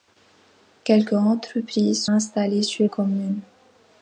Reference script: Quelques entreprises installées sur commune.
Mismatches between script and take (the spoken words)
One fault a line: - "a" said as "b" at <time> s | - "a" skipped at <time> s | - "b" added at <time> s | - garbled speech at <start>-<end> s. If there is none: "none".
none